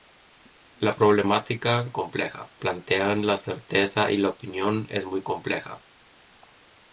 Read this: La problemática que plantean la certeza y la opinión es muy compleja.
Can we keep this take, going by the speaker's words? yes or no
no